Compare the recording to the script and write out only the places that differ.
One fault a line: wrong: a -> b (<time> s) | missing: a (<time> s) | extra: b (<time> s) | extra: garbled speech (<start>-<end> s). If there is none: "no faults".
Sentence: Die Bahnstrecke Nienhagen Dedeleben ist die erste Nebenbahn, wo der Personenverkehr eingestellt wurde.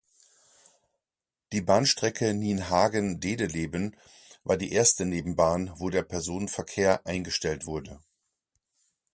wrong: ist -> war (4.4 s)